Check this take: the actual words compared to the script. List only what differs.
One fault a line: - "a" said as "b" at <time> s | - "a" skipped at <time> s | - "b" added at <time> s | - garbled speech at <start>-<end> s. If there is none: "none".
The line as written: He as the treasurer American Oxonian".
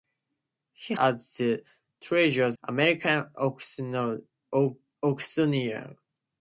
none